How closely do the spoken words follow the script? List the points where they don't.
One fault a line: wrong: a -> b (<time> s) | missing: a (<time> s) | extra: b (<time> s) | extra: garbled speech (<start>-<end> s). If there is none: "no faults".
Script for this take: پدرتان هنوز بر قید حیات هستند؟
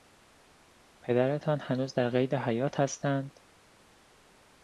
wrong: بر -> در (1.9 s)